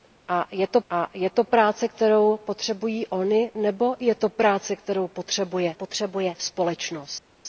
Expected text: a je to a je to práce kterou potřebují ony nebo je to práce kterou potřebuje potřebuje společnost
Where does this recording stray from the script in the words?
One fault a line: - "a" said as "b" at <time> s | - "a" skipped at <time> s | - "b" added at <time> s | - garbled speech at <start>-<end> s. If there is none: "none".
none